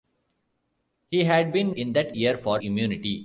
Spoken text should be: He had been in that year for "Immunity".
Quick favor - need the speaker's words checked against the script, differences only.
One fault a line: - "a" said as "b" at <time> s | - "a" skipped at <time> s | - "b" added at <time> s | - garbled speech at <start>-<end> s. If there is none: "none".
none